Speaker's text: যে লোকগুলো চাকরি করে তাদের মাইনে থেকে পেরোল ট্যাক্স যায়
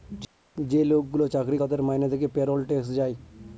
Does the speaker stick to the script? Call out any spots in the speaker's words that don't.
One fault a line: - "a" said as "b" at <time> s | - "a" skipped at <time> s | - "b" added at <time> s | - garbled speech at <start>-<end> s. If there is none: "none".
- "করে" skipped at 1.6 s